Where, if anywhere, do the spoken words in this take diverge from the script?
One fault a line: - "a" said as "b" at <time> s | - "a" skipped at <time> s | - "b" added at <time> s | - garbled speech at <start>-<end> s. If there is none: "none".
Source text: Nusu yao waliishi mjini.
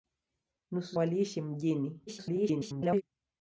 - "yao" skipped at 1.0 s
- garbled speech at 2.1-3.0 s